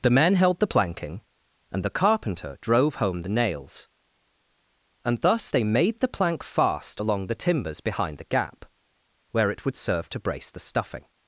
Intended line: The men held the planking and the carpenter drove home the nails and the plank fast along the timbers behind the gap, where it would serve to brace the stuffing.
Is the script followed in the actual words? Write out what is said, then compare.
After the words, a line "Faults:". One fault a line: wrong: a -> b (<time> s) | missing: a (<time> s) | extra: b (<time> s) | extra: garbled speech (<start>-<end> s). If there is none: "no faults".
The men held the planking and the carpenter drove home the nails and thus they made the plank fast along the timbers behind the gap, where it would serve to brace the stuffing.
Faults:
extra: thus they made (5.2 s)